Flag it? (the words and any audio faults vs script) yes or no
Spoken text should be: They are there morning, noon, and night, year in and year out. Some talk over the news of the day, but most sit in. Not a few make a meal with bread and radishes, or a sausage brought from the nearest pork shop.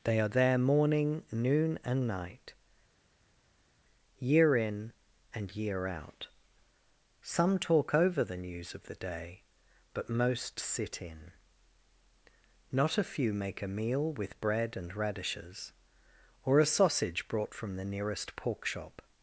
no